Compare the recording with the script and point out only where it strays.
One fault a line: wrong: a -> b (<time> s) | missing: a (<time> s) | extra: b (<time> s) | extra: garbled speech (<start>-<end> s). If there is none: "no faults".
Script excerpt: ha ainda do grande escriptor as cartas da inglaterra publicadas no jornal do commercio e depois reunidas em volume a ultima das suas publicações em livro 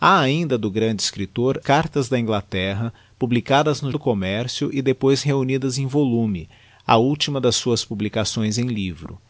missing: as (1.6 s)
missing: jornal (3.9 s)